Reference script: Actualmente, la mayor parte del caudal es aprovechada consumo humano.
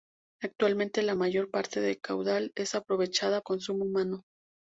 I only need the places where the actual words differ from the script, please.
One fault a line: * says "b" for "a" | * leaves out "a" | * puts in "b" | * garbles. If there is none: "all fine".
all fine